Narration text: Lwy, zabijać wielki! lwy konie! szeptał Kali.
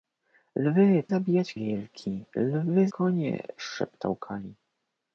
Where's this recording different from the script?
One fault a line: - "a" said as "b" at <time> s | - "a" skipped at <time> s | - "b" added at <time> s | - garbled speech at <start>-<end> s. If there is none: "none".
none